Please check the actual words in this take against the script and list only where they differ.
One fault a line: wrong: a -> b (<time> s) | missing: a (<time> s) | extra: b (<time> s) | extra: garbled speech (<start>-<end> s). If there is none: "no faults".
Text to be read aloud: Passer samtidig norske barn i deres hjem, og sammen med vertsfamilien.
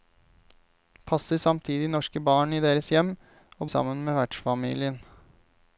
no faults